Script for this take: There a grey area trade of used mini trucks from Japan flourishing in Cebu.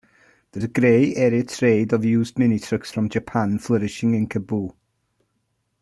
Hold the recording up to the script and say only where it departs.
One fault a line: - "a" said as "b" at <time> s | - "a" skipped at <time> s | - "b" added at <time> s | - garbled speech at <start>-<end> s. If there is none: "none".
none